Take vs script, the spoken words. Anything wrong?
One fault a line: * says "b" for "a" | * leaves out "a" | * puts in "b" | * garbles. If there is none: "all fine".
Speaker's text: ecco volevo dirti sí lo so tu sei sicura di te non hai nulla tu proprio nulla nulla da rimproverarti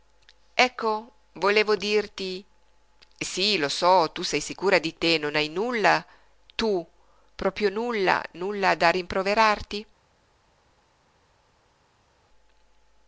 all fine